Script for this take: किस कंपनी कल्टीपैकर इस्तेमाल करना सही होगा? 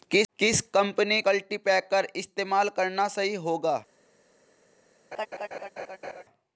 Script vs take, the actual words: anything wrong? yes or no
no